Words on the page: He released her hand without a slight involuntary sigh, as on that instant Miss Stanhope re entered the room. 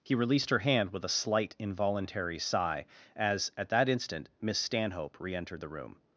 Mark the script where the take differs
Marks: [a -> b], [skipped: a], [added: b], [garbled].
He released her hand [without -> with] a slight involuntary sigh, as [on -> at] that instant Miss Stanhope re entered the room.